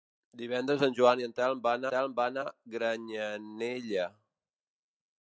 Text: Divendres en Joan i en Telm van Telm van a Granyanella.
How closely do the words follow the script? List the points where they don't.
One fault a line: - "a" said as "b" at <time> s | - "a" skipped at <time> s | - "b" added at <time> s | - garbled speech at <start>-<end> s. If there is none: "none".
none